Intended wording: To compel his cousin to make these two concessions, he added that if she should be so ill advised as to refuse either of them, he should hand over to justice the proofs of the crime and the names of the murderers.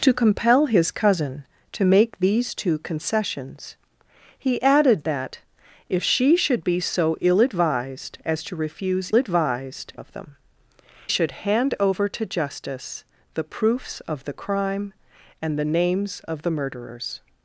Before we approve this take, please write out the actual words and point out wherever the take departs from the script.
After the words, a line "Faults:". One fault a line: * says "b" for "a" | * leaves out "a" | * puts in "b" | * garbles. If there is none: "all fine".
To compel his cousin to make these two concessions, he added that if she should be so ill advised as to refuse advised of them, should hand over to justice the proofs of the crime and the names of the murderers.
Faults:
* says "advised" for "either"
* leaves out "he"